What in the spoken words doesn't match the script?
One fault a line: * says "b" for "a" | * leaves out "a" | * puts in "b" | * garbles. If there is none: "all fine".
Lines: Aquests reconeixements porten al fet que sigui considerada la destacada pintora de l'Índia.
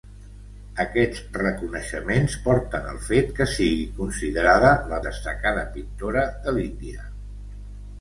all fine